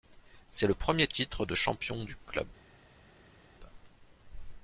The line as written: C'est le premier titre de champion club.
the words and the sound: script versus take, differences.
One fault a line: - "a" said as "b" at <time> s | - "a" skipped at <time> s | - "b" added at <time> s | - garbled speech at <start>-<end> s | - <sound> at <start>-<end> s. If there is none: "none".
- "du" added at 2.0 s